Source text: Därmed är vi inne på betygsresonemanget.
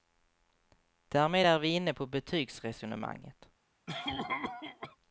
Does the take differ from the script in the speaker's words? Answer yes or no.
no